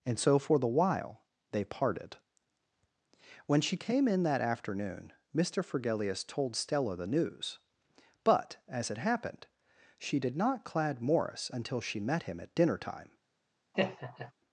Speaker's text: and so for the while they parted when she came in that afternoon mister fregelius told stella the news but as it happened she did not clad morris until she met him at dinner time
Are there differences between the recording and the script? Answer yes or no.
no